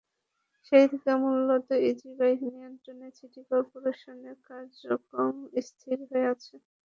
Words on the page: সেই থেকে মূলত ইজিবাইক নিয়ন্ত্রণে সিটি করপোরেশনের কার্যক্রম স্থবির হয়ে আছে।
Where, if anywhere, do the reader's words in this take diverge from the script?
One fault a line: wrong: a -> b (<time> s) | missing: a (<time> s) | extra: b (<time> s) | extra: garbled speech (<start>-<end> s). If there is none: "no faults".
no faults